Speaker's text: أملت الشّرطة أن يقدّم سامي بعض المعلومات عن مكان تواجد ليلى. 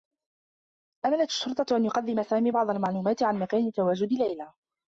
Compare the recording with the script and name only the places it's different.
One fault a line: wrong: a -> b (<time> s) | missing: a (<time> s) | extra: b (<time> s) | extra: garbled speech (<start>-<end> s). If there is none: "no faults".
no faults